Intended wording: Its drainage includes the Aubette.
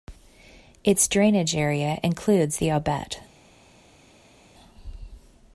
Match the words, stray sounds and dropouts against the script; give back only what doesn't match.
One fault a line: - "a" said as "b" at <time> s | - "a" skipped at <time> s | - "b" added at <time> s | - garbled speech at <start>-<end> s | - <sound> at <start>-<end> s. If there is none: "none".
- "area" added at 1.6 s